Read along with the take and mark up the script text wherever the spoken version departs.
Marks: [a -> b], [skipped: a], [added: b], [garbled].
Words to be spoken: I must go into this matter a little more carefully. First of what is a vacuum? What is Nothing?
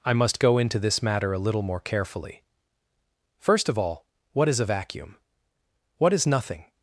I must go into this matter a little more carefully. First of [added: all] what is a vacuum? What is Nothing?